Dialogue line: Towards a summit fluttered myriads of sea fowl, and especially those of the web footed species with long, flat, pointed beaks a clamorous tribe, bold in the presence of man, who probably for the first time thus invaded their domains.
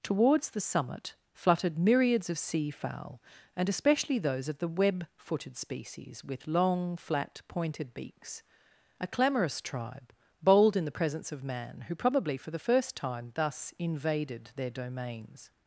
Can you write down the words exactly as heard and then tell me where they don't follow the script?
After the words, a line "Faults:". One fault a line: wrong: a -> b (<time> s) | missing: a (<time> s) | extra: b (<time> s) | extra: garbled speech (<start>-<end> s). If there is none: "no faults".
Towards the summit fluttered myriads of sea fowl, and especially those of the web footed species with long, flat, pointed beaks a clamorous tribe, bold in the presence of man, who probably for the first time thus invaded their domains.
Faults:
wrong: a -> the (0.5 s)